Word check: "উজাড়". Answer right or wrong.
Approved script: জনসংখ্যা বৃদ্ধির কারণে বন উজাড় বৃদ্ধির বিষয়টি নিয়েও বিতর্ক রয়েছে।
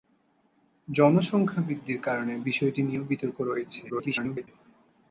wrong